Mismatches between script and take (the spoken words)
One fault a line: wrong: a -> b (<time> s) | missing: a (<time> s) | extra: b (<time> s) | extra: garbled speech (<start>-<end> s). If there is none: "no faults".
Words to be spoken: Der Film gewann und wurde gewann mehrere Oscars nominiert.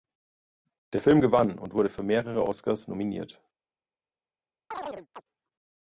wrong: gewann -> für (1.9 s)